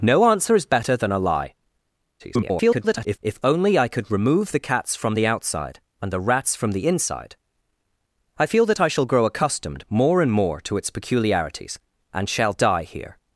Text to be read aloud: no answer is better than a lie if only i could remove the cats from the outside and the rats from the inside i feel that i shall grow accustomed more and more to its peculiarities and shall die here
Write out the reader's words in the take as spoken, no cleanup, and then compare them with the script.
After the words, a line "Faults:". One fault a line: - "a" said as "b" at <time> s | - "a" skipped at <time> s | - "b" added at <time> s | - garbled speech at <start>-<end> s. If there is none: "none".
no answer is better than a lie [garbled] if only i could remove the cats from the outside and the rats from the inside i feel that i shall grow accustomed more and more to its peculiarities and shall die here
Faults:
- garbled speech at 2.2-3.2 s